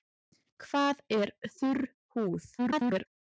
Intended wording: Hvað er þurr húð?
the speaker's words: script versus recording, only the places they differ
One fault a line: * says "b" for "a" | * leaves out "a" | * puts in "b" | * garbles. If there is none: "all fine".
* garbles